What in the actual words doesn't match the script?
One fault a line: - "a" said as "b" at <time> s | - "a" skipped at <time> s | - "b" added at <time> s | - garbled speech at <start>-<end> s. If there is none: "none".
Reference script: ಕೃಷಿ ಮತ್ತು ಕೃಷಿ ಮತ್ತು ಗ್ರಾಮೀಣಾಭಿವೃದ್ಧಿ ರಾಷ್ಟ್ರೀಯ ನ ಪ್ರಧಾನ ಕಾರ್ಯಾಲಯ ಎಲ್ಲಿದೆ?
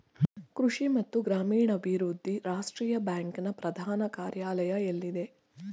- "ಕೃಷಿ ಮತ್ತು" skipped at 1.2 s
- "ಬ್ಯಾಂಕ್" added at 3.0 s